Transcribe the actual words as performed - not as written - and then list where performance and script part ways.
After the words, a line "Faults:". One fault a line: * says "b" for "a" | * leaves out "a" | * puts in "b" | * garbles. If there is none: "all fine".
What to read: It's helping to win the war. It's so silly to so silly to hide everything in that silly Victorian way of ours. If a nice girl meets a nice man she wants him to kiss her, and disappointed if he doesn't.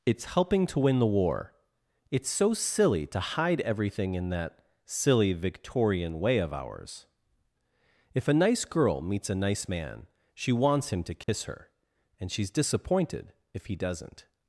It's helping to win the war. It's so silly to hide everything in that silly Victorian way of ours. If a nice girl meets a nice man she wants him to kiss her, and she's disappointed if he doesn't.
Faults:
* leaves out "so silly to"
* puts in "she's"